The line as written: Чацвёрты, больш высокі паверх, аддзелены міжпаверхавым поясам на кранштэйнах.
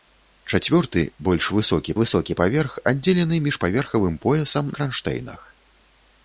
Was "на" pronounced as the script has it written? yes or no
no